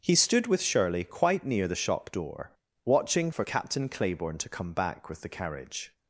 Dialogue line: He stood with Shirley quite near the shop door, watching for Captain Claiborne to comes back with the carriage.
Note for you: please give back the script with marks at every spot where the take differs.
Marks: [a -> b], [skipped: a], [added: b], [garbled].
He stood with Shirley quite near the shop door, watching for Captain Claiborne to [comes -> come] back with the carriage.